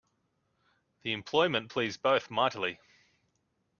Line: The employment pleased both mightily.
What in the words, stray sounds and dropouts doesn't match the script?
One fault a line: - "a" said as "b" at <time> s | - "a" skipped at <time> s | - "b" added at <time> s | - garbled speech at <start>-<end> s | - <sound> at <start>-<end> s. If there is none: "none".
none